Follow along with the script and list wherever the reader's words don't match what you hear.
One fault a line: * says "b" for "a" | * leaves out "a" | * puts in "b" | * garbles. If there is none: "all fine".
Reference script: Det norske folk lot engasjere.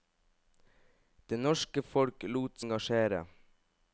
all fine